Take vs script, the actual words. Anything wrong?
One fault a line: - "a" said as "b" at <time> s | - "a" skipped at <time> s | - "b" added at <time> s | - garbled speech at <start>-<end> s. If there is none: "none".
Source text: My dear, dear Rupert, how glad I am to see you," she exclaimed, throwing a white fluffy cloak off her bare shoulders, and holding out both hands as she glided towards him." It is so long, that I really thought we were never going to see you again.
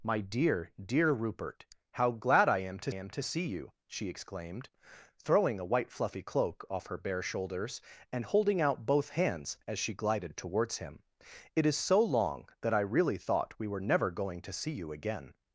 - "am to" added at 2.9 s